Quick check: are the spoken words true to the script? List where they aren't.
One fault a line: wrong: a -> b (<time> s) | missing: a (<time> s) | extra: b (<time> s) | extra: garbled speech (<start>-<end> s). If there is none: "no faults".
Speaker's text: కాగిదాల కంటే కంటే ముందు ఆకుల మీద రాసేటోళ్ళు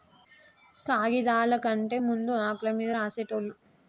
missing: కంటే (2.0 s)